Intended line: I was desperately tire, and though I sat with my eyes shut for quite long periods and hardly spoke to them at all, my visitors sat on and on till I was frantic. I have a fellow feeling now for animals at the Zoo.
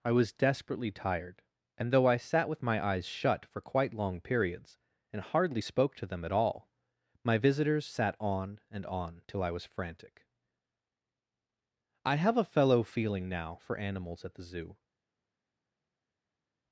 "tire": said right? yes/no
no